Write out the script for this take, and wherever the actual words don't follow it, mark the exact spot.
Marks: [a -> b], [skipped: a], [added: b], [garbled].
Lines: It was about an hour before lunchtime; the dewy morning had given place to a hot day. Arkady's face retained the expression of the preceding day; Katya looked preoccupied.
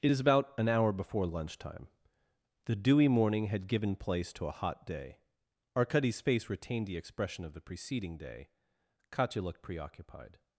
It [was -> is] about an hour before lunchtime; the dewy morning had given place to a hot day. Arkady's face retained the expression of the preceding day; Katya looked preoccupied.